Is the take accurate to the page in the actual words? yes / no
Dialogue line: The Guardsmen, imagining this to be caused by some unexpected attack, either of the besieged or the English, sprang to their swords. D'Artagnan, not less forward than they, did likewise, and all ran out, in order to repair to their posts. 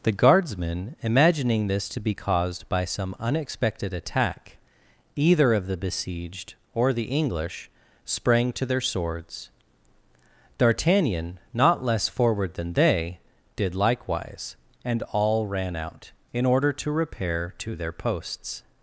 yes